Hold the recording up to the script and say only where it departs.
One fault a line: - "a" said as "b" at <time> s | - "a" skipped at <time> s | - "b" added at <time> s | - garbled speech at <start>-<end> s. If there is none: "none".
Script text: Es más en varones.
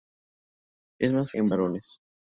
none